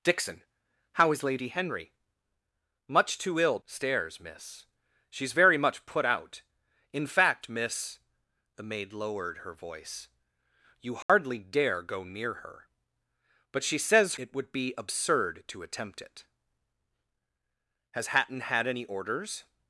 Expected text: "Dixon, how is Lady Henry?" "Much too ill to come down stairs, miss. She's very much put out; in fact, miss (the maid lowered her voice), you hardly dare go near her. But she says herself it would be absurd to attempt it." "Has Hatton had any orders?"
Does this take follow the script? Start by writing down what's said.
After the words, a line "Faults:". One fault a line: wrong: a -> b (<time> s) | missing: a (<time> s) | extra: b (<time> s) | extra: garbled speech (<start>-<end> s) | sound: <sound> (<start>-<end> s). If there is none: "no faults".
"Dixon, how is Lady Henry?" "Much too ill stairs, miss. She's very much put out; in fact, miss (the maid lowered her voice), you hardly dare go near her. But she says it would be absurd to attempt it." "Has Hatton had any orders?"
Faults:
missing: to come down (3.6 s)
sound: dropout (11.0-11.1 s)
missing: herself (14.2 s)